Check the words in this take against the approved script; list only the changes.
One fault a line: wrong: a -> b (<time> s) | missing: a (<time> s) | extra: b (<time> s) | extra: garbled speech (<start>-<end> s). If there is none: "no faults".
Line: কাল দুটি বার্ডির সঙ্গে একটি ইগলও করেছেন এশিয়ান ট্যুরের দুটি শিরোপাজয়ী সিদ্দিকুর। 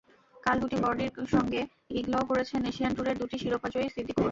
missing: একটি (1.6 s)